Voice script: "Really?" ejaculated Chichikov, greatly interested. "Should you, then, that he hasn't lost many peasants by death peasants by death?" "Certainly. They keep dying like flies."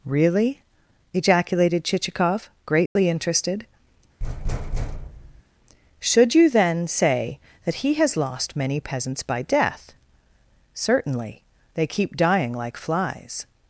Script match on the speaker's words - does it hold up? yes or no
no